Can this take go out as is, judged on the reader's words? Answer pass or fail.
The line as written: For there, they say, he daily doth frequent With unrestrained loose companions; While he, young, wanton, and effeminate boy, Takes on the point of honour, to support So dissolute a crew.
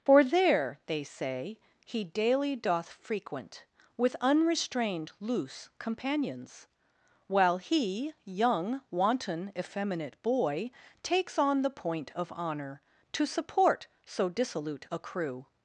fail